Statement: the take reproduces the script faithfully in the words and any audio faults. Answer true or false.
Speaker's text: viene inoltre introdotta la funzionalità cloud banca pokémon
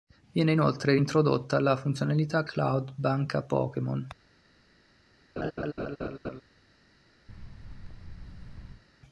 false